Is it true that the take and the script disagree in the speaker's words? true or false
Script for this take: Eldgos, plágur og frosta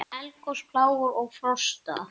false